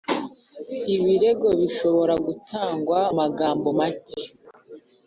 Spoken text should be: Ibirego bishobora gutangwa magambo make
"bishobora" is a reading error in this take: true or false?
false